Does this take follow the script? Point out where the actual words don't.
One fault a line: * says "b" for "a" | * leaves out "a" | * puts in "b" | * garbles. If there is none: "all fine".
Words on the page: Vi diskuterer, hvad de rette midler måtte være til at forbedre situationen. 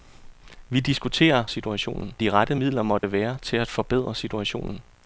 * says "situationen" for "hvad"